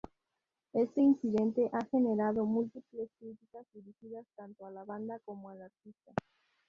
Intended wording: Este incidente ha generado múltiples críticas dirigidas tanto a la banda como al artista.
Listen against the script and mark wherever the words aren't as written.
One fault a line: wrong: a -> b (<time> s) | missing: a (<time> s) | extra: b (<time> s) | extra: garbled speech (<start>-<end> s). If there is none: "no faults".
no faults